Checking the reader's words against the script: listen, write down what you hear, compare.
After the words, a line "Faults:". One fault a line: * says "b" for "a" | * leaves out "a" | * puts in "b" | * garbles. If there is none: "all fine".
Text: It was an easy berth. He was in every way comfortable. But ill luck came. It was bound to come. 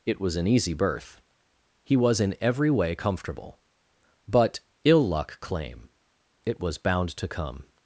It was an easy berth. He was in every way comfortable. But ill luck claim. It was bound to come.
Faults:
* says "claim" for "came"